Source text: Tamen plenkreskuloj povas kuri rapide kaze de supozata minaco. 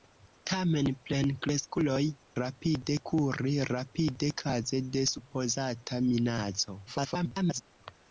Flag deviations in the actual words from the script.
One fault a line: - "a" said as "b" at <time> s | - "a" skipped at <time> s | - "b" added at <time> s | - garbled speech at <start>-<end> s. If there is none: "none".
- "povas" said as "rapide" at 2.4 s
- garbled speech at 6.9-7.6 s